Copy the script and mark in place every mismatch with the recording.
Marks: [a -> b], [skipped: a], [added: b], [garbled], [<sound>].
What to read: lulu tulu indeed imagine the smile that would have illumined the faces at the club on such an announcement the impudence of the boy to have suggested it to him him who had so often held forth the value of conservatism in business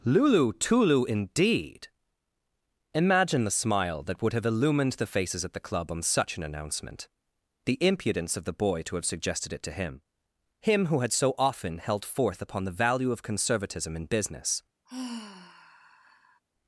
lulu tulu indeed imagine the smile that would have illumined the faces at the club on such an announcement the impudence of the boy to have suggested it to him him who had so often held forth [added: upon] the value of conservatism in business [sigh]